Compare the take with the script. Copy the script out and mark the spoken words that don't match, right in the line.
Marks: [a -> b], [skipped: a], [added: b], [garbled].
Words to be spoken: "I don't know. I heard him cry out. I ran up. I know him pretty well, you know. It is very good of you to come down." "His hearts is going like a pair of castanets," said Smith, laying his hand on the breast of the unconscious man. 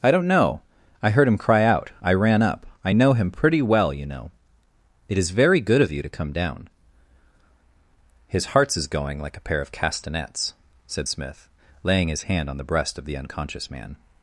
"I don't know. I heard him cry out. I ran up. I know him pretty well, you know. It is very good of you to come down." "His hearts is going like a pair of castanets," said Smith, laying his hand on the breast of the unconscious man.